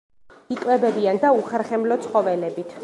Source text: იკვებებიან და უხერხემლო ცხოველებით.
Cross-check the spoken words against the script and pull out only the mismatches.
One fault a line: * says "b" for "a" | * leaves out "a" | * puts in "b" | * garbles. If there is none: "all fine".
all fine